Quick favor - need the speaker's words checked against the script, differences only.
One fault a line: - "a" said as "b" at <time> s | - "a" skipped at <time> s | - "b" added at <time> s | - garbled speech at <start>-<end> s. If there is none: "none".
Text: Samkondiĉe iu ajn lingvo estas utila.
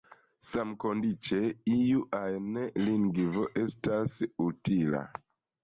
none